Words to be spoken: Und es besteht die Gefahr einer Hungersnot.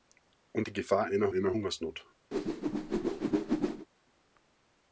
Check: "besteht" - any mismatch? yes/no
yes